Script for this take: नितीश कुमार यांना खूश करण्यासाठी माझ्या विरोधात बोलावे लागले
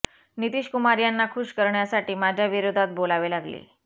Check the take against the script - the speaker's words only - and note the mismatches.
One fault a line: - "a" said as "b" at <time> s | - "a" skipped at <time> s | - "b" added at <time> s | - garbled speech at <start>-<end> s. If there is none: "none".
none